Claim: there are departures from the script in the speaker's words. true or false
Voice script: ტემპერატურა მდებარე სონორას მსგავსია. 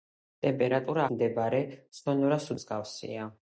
false